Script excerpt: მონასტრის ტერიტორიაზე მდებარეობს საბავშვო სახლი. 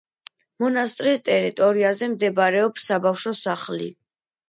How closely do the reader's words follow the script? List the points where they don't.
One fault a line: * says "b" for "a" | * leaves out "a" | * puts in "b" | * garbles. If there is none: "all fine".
all fine